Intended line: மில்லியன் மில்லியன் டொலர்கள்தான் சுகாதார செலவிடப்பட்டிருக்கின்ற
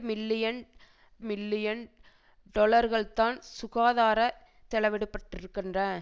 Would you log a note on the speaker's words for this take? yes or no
no